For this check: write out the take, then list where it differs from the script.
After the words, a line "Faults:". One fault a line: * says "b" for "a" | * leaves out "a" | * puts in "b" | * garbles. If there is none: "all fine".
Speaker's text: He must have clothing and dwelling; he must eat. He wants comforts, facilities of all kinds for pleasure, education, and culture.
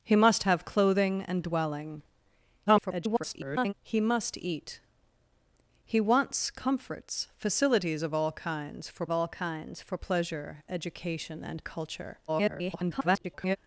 He must have clothing and dwelling; [garbled] he must eat. He wants comforts, facilities of all kinds for all kinds for pleasure, education, and culture. [garbled]
Faults:
* garbles
* puts in "all kinds for"
* garbles